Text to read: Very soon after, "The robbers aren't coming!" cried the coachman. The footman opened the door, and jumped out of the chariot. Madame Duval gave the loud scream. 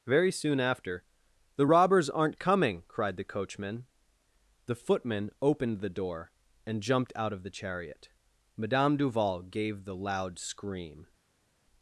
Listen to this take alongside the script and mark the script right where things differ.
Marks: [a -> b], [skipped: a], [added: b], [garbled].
Very soon after, "The robbers aren't coming!" cried the coachman. The footman opened the door, and jumped out of the chariot. Madame Duval gave the loud scream.